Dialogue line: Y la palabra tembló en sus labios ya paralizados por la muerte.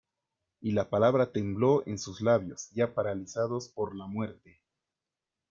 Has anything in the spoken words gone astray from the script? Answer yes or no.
no